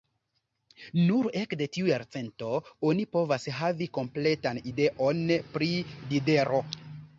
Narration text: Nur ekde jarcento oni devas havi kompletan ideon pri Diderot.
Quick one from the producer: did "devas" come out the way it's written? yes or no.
no